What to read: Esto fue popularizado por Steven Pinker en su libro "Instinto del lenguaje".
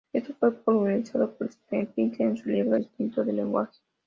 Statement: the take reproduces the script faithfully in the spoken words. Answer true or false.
true